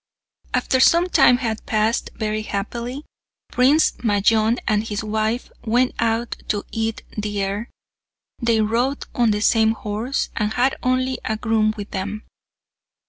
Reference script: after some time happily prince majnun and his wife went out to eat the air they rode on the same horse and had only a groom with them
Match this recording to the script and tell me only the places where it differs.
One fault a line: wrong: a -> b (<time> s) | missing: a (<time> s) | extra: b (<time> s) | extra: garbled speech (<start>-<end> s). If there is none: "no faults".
extra: had passed very (1.4 s)